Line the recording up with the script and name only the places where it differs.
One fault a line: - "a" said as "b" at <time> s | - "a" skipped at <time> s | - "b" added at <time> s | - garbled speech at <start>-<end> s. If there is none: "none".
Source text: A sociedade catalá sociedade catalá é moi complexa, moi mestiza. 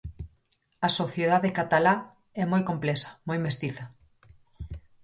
- "sociedade catalá" skipped at 1.9 s